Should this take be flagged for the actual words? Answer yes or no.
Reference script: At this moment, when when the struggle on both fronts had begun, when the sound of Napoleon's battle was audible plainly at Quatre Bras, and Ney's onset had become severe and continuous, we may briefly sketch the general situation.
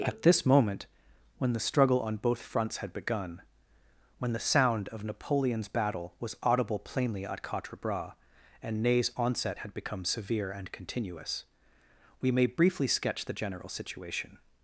yes